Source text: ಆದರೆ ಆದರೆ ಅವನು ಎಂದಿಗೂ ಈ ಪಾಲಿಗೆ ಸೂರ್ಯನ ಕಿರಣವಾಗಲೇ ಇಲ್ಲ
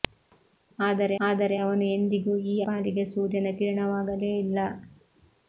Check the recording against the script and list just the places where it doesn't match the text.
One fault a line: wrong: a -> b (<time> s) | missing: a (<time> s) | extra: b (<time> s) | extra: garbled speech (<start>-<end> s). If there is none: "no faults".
no faults